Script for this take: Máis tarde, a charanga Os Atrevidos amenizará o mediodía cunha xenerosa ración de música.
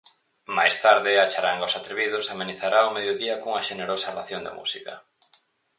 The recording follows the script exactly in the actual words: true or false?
true